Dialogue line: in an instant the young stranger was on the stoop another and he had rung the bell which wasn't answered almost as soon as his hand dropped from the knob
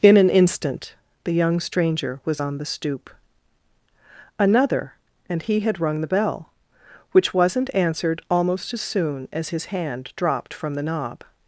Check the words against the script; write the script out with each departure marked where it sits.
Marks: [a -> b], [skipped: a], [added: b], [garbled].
in an instant the young stranger was on the stoop another and he had rung the bell which wasn't answered almost as soon as his hand dropped from the knob